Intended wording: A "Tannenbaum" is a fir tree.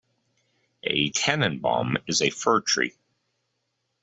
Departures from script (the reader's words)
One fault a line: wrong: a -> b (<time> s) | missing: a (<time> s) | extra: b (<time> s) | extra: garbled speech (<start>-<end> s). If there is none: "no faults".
no faults